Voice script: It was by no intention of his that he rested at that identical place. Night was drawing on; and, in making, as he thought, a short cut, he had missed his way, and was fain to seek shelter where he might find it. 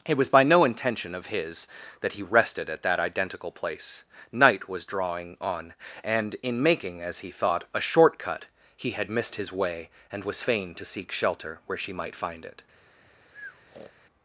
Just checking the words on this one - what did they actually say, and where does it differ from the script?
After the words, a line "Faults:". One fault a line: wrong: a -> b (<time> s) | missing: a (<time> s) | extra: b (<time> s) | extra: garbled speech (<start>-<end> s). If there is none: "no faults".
It was by no intention of his that he rested at that identical place. Night was drawing on; and, in making, as he thought, a short cut, he had missed his way, and was fain to seek shelter where she might find it.
Faults:
wrong: he -> she (11.8 s)